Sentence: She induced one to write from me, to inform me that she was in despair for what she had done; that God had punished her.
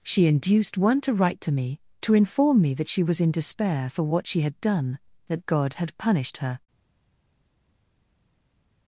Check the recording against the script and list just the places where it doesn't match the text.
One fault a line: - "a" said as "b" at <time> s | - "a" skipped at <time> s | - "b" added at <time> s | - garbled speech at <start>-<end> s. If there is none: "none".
- "from" said as "to" at 1.4 s